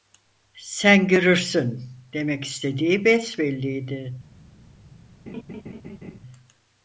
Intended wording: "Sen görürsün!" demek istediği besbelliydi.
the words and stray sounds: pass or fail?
fail